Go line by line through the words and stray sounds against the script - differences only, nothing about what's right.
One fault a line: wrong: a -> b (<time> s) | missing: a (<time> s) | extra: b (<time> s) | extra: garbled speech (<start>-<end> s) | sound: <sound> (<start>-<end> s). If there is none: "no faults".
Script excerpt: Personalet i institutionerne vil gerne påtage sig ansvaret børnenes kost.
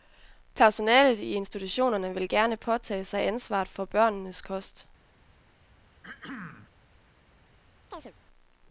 extra: for (3.7 s)
sound: throat clearing (6.0-6.7 s)
sound: chirp (7.9-8.1 s)